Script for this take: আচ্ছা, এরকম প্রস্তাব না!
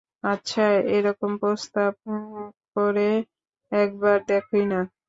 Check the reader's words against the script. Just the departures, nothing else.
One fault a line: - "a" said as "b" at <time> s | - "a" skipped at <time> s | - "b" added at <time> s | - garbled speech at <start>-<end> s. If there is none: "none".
- "করে একবার দেখোই" added at 2.8 s